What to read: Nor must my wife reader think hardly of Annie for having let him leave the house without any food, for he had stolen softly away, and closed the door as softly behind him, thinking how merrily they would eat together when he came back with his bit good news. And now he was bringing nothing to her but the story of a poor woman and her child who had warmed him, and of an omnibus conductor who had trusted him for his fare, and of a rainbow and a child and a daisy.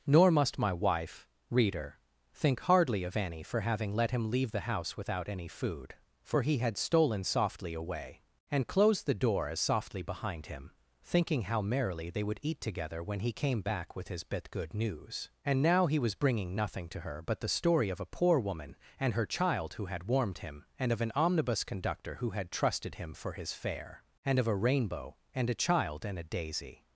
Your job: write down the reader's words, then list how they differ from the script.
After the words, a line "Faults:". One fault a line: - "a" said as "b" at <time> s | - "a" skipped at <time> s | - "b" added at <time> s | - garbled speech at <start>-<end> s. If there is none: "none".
Nor must my wife reader think hardly of Annie for having let him leave the house without any food, for he had stolen softly away, and closed the door as softly behind him, thinking how merrily they would eat together when he came back with his bit good news. And now he was bringing nothing to her but the story of a poor woman and her child who had warmed him, and of an omnibus conductor who had trusted him for his fare, and of a rainbow and a child and a daisy.
Faults:
none